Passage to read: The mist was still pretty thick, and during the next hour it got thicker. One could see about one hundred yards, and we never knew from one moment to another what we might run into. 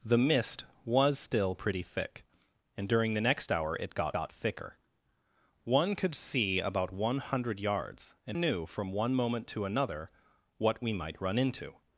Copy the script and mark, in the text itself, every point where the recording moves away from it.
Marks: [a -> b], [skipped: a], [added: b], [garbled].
The mist was still pretty thick, and during the next hour it got [added: got] thicker. One could see about one hundred yards, and [skipped: we never] knew from one moment to another what we might run into.